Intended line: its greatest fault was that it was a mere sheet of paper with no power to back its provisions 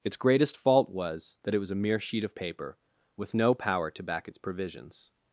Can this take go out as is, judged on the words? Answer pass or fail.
pass